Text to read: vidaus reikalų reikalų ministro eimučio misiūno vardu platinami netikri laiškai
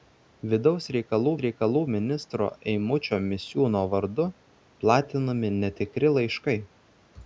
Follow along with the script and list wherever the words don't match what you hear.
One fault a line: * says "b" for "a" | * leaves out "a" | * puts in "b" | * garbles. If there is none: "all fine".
all fine